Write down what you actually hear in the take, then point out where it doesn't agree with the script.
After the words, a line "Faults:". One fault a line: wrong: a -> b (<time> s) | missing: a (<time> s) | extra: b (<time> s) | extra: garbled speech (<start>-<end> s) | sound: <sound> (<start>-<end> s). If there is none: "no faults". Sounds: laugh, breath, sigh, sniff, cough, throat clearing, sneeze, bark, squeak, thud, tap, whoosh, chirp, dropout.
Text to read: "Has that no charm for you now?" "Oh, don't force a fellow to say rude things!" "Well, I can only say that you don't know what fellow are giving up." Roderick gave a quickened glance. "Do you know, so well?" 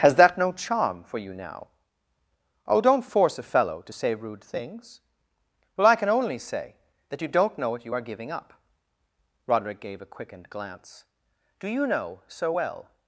"Has that no charm for you now?" "Oh, don't force a fellow to say rude things!" "Well, I can only say that you don't know what you are giving up." Roderick gave a quickened glance. "Do you know, so well?"
Faults:
wrong: fellow -> you (7.8 s)